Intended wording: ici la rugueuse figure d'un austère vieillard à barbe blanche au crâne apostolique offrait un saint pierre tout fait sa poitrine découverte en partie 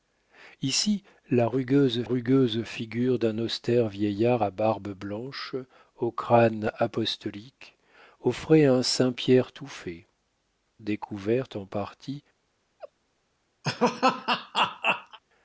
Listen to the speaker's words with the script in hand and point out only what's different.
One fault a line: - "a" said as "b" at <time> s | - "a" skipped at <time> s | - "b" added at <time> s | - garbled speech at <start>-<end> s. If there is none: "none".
- "rugueuse" added at 2.0 s
- "sa poitrine" skipped at 10.1 s